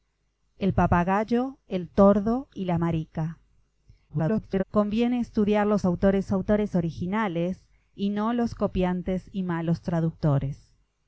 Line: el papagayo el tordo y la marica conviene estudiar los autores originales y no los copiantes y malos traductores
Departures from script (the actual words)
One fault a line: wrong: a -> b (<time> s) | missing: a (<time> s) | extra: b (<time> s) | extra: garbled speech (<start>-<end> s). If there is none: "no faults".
extra: garbled speech (4.1-4.6 s)
extra: autores (6.3 s)